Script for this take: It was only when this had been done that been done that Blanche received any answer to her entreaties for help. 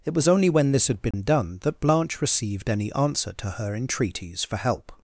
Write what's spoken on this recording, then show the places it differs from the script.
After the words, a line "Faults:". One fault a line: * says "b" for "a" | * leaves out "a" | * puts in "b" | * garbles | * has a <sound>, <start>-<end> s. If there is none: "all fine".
It was only when this had been done that Blanche received any answer to her entreaties for help.
Faults:
* has a dropout, 1.1-1.1 s
* leaves out "been done that"